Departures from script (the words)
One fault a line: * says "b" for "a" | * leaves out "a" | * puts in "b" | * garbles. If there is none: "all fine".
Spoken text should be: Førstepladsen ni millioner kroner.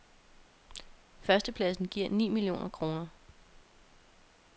* puts in "giver"